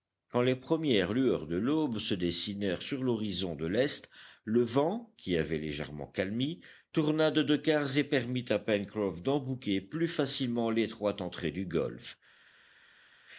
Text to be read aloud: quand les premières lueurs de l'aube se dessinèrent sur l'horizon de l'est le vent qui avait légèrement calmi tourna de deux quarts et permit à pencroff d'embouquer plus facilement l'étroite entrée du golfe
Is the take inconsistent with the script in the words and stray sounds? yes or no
no